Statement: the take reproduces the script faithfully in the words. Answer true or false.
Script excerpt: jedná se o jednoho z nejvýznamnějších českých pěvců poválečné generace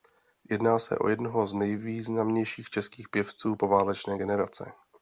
true